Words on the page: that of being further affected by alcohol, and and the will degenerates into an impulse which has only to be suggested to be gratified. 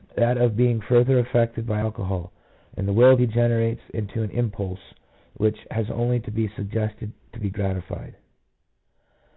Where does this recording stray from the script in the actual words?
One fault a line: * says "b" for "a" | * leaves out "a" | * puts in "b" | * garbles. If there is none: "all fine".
* leaves out "and"